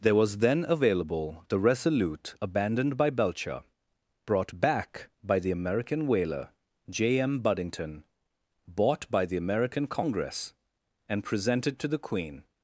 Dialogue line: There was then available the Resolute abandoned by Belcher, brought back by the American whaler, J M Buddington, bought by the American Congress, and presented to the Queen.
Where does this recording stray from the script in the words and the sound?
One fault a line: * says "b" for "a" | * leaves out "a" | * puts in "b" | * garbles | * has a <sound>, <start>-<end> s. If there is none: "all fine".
all fine